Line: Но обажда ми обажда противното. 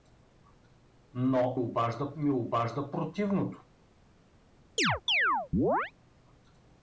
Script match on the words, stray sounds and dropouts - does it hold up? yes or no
no